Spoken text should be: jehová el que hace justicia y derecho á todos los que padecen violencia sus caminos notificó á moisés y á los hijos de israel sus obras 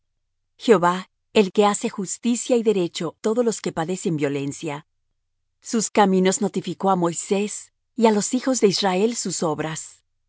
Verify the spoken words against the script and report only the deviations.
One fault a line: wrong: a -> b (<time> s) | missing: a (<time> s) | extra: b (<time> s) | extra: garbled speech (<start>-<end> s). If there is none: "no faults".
missing: á (3.1 s)